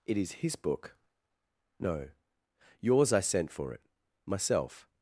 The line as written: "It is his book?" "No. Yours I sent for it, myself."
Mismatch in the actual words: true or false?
false